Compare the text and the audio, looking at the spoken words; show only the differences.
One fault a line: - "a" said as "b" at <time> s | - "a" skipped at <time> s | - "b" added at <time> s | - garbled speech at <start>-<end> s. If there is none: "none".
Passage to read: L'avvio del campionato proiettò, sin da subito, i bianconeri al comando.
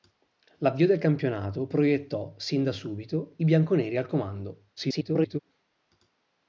- garbled speech at 4.8-5.4 s